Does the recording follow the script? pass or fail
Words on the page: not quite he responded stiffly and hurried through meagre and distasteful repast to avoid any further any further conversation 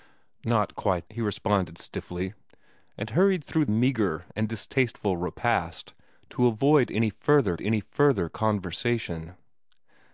pass